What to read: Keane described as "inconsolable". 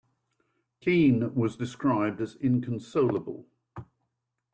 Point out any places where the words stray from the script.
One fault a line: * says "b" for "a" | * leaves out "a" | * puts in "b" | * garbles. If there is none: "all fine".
* puts in "was"